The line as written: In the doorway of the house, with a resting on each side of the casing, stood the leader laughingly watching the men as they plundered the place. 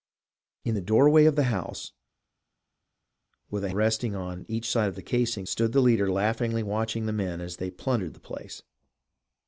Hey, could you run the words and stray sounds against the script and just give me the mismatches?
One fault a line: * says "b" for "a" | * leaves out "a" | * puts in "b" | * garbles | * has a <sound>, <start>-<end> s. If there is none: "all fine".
all fine